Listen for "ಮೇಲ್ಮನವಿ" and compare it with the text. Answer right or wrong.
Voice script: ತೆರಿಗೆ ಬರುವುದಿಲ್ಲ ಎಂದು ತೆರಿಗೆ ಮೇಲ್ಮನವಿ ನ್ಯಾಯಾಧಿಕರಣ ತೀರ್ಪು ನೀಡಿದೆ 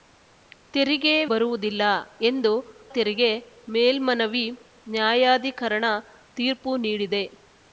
right